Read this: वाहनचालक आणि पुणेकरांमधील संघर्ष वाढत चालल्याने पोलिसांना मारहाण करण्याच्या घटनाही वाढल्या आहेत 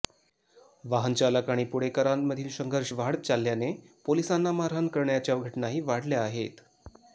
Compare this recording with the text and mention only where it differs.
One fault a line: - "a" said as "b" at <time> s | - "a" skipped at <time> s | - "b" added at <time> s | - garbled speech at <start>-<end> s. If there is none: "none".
none